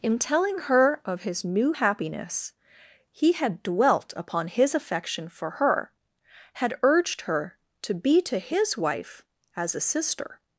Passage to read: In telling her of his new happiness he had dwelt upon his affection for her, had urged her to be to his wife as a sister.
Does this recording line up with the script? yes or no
yes